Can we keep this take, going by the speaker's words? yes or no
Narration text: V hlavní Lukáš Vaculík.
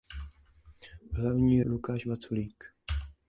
yes